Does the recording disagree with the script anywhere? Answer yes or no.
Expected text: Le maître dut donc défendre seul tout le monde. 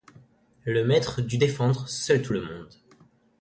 yes